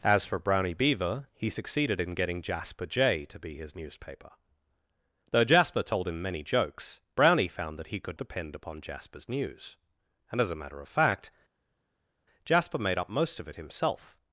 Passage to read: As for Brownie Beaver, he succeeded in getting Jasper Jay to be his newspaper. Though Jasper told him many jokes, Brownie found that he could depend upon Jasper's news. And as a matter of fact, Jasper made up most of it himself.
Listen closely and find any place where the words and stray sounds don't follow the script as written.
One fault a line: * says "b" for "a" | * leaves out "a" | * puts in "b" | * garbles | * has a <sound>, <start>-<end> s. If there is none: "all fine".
all fine